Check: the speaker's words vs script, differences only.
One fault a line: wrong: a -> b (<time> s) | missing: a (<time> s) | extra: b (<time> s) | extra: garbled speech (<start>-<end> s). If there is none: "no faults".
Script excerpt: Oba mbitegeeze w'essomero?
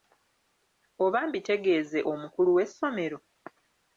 extra: omukulu (2.1 s)